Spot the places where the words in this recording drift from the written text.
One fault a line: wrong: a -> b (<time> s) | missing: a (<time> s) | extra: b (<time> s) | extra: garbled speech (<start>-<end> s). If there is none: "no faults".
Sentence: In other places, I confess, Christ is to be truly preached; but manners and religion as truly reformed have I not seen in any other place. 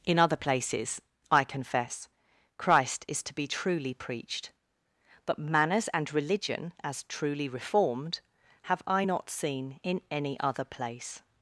no faults